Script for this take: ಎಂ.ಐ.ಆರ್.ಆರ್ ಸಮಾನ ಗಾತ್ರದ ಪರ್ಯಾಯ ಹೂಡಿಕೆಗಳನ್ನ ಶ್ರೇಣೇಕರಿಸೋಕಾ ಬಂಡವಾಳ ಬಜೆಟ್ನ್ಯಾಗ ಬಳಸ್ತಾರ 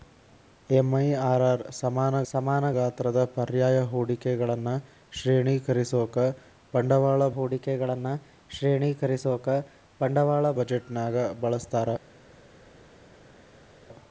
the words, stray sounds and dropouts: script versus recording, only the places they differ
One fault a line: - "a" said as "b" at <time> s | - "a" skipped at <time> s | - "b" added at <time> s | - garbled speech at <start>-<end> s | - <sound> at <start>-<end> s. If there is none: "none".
- "ಸಮಾನ" added at 2.3 s
- "ಹೂಡಿಕೆಗಳನ್ನ ಶ್ರೇಣೇಕರಿಸೋಕಾ ಬಂಡವಾಳ" added at 7.4 s